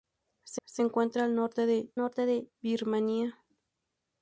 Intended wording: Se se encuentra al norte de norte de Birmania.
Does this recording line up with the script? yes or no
yes